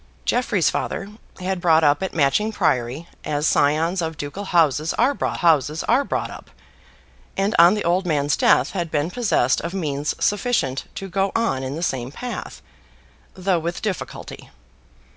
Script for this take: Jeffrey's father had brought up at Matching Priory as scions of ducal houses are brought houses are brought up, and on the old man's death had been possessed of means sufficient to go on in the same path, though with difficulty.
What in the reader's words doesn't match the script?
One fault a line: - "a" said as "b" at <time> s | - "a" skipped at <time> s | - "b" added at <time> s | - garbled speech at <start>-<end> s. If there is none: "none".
none